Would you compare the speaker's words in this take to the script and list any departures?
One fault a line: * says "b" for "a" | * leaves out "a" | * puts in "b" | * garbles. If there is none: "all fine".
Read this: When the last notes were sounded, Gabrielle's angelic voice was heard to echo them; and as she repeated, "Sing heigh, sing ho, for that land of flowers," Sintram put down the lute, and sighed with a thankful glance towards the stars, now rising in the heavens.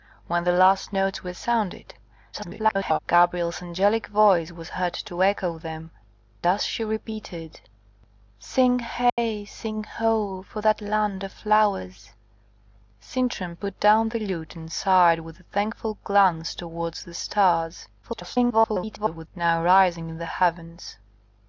* garbles
* leaves out "and"
* garbles